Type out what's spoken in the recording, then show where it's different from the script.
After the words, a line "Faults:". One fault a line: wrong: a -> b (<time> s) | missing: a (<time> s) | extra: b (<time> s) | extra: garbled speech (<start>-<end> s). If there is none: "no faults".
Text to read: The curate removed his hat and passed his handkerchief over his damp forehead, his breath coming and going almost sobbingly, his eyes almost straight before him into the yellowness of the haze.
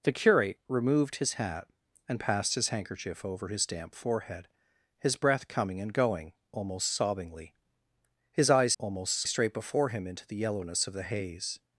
The curate removed his hat and passed his handkerchief over his damp forehead, his breath coming and going almost sobbingly, his eyes almost straight before him into the yellowness of the haze.
Faults:
no faults